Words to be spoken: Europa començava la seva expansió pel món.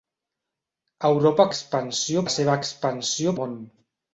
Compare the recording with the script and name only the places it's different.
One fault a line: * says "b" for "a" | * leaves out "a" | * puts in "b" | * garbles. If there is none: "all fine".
* says "expansió" for "començava"
* leaves out "pel"